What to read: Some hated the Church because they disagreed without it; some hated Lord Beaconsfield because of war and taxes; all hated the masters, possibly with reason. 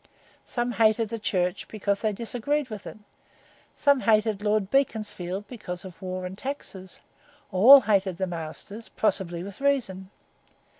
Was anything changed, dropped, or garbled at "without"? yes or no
yes